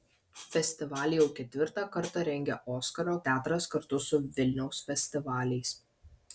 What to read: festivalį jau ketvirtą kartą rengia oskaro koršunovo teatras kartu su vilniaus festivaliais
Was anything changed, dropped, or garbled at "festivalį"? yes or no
no